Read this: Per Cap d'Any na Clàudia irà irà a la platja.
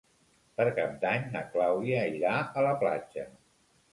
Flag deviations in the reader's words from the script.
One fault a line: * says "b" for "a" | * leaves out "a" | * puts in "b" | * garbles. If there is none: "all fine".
* leaves out "irà"